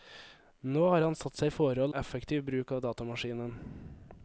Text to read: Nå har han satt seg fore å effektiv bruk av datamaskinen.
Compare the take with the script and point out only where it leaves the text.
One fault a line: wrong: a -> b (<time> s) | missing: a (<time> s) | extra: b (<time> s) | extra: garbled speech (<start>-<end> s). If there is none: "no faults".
no faults